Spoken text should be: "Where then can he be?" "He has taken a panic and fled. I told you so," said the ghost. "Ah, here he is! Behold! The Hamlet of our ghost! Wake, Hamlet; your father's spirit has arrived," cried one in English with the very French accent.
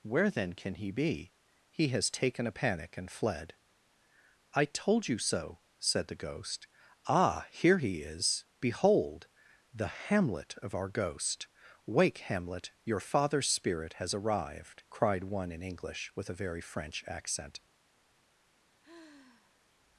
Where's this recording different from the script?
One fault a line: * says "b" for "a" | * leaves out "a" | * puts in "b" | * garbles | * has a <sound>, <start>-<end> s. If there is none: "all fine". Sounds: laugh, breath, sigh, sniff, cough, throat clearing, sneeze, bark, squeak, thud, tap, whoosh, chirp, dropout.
* says "a" for "the"
* has a sigh, 18.8-19.7 s